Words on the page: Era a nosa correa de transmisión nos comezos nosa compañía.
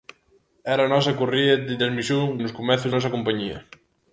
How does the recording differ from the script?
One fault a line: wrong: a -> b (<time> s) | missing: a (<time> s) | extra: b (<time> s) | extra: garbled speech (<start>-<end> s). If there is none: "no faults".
no faults